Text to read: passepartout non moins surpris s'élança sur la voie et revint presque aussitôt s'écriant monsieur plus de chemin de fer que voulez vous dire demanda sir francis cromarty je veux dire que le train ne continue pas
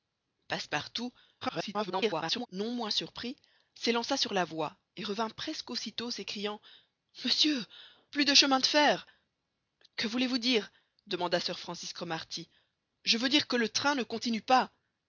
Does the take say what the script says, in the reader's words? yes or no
no